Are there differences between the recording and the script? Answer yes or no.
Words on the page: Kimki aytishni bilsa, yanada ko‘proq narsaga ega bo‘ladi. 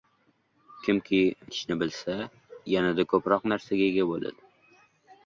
no